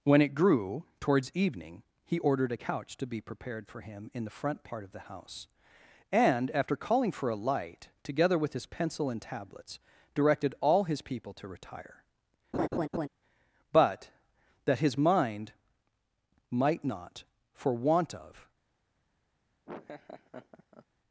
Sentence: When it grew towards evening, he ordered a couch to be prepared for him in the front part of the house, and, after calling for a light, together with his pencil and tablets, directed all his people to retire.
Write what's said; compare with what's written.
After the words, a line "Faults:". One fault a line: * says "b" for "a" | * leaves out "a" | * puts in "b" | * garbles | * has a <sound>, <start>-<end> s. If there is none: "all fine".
When it grew towards evening, he ordered a couch to be prepared for him in the front part of the house, and, after calling for a light, together with his pencil and tablets, directed all his people to retire. But that his mind might not, for want of
Faults:
* has a laugh, 12.5-13.1 s
* puts in "But that his mind might not for want of"
* has a laugh, 19.7-20.9 s